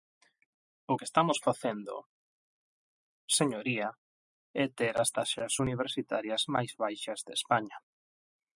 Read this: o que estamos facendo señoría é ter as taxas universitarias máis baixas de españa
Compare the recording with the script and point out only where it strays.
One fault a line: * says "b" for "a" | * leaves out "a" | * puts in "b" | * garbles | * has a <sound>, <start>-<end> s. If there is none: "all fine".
all fine